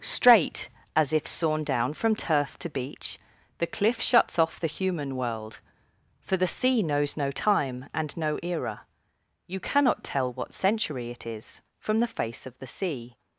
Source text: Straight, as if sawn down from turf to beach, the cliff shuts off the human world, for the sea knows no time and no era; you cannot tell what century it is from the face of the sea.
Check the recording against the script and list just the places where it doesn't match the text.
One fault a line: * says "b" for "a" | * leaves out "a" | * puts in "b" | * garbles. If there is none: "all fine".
all fine